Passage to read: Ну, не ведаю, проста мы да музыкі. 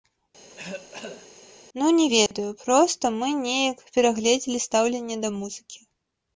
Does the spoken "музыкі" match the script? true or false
true